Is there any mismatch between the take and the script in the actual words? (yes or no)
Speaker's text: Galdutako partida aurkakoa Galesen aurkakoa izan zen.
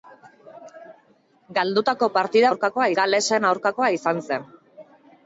no